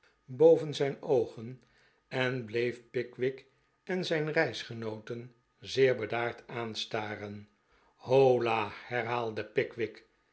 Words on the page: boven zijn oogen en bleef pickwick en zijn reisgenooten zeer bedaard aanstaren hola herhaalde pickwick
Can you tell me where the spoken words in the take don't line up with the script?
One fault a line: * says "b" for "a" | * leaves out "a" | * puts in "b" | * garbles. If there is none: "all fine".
all fine